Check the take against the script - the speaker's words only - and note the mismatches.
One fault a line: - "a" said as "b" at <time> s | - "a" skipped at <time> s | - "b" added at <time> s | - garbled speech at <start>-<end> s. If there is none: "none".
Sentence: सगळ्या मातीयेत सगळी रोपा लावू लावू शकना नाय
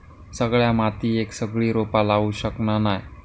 - "लावू" skipped at 2.3 s